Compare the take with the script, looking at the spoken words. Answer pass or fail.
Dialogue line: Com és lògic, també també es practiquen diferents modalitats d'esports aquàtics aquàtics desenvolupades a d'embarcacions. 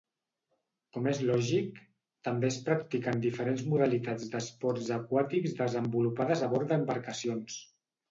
fail